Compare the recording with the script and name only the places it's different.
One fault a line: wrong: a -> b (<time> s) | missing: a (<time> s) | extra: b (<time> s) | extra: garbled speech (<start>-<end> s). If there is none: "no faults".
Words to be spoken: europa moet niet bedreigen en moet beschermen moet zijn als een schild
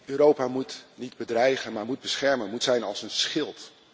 wrong: en -> maar (1.7 s)